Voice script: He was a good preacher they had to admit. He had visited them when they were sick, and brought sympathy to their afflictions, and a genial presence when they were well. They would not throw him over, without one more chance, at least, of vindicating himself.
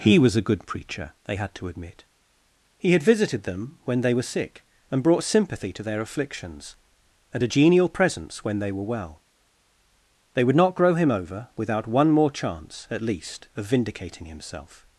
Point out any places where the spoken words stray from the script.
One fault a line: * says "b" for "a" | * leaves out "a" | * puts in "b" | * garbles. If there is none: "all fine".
* says "grow" for "throw"